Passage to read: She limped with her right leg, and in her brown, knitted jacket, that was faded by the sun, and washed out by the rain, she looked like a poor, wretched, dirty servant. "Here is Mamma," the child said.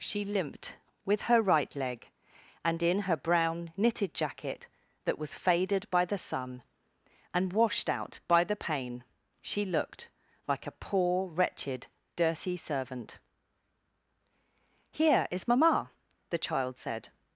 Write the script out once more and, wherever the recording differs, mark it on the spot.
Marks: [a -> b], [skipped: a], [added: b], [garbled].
She limped with her right leg, and in her brown, knitted jacket, that was faded by the sun, and washed out by the [rain, -> pain] she looked like a poor, wretched, dirty servant. "Here is Mamma," the child said.